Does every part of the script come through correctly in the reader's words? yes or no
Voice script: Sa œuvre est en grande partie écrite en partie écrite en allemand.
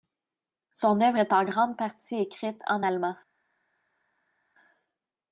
no